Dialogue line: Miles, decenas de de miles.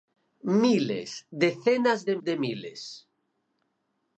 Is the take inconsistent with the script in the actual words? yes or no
no